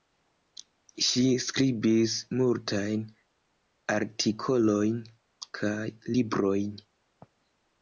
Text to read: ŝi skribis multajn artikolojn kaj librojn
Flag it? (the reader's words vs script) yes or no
no